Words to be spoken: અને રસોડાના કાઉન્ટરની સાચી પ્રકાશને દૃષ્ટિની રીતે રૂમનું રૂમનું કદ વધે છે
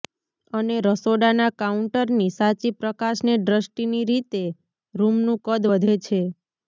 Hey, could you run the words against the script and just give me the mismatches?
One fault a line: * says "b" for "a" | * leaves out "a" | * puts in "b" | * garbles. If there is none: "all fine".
* leaves out "રૂમનું"